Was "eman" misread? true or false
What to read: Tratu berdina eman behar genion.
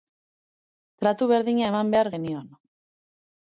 false